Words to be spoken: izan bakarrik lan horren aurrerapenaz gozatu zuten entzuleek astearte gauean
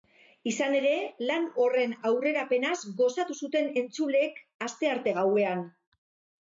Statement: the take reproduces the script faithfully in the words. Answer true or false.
false